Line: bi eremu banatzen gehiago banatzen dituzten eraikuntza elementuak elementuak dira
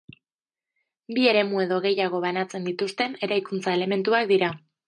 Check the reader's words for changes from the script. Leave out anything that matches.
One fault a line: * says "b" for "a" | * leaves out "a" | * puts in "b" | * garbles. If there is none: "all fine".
* says "edo" for "banatzen"
* leaves out "elementuak"